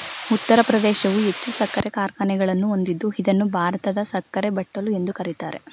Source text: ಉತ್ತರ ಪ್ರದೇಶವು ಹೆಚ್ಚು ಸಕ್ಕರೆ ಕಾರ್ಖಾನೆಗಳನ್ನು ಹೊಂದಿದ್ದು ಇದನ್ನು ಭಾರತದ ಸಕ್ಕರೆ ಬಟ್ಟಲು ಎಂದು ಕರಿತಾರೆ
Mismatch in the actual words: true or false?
false